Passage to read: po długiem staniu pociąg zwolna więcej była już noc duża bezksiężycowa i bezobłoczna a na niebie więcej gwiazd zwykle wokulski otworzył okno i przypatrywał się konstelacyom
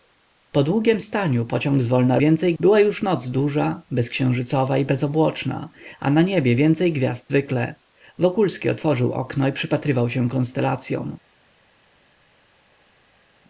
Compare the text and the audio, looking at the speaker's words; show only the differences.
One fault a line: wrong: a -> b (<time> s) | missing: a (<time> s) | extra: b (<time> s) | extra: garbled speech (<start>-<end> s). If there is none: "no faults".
no faults